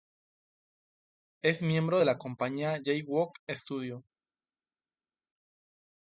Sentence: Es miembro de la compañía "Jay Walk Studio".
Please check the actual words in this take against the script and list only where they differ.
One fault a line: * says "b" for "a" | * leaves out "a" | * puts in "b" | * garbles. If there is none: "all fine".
all fine